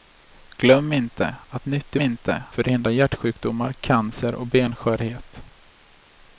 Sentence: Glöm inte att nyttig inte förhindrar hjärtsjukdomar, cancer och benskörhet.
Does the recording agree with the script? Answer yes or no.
yes